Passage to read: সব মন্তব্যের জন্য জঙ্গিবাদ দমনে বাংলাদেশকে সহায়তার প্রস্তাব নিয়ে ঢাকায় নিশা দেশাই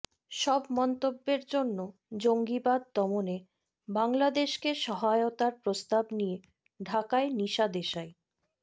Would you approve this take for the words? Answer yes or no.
yes